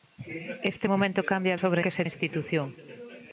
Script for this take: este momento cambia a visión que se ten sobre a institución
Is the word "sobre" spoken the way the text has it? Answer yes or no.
no